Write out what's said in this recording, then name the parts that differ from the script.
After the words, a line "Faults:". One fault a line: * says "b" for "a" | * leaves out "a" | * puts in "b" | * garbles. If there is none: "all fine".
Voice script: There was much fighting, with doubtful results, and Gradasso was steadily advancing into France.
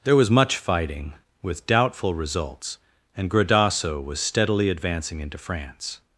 There was much fighting, with doubtful results, and Gradasso was steadily advancing into France.
Faults:
all fine